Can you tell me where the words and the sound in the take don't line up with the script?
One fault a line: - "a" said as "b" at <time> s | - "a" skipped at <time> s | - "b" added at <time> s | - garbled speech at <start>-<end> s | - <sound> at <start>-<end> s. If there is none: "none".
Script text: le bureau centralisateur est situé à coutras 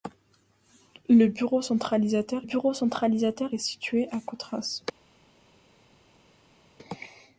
- "bureau centralisateur" added at 2.4 s